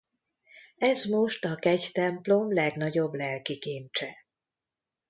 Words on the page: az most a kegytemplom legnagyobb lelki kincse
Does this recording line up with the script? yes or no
no